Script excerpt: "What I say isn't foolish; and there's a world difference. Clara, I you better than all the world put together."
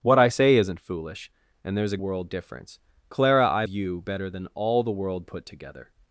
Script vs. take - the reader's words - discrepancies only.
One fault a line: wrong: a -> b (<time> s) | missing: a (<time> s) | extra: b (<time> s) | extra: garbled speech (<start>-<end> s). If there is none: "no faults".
no faults